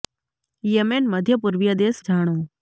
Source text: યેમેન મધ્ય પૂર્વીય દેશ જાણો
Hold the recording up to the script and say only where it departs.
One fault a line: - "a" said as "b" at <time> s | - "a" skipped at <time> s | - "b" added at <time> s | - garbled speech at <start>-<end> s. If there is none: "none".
none